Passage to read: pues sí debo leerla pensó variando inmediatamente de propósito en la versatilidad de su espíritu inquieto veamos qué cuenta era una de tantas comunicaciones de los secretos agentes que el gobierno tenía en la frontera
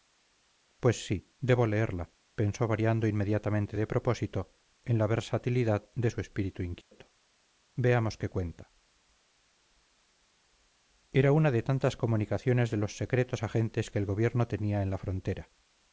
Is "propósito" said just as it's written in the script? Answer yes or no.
yes